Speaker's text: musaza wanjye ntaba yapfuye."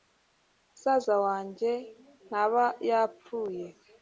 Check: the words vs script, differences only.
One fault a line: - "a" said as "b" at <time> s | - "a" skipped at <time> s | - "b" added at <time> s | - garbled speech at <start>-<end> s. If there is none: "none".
none